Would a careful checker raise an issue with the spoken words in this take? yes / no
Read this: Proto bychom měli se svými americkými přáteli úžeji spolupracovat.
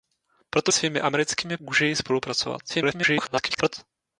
yes